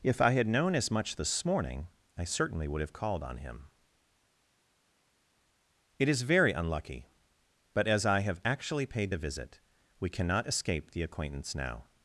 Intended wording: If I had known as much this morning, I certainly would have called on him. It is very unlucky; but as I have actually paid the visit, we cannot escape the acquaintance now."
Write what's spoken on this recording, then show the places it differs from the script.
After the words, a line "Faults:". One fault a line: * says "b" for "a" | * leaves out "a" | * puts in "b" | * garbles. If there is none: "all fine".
If I had known as much this morning, I certainly would have called on him. It is very unlucky; but as I have actually paid the visit, we cannot escape the acquaintance now."
Faults:
all fine